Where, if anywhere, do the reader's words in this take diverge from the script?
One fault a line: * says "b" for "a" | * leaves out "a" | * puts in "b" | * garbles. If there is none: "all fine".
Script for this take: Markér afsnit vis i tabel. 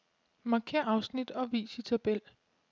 * puts in "og"